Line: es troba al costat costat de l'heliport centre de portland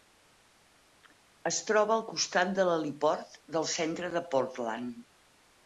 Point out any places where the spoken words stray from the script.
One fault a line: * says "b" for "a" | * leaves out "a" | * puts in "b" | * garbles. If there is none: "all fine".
* leaves out "costat"
* puts in "del"